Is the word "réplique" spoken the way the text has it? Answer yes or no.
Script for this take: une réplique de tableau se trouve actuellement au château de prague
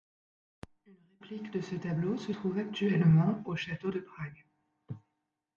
yes